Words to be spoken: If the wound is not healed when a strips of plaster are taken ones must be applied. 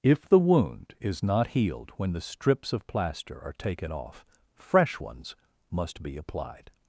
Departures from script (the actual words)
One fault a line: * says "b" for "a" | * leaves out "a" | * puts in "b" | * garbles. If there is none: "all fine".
* says "the" for "a"
* puts in "off fresh"